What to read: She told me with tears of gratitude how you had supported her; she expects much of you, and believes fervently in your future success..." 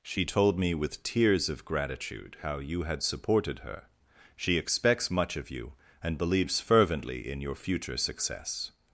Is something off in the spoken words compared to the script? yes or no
no